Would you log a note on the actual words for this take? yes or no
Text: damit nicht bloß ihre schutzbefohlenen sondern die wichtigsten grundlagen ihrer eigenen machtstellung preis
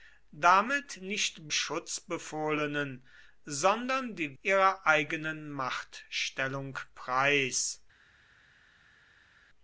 yes